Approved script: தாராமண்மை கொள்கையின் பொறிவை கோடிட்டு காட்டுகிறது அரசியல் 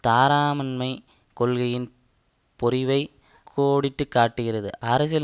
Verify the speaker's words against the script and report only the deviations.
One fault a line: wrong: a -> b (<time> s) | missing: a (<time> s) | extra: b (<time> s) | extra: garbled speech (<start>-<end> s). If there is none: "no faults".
no faults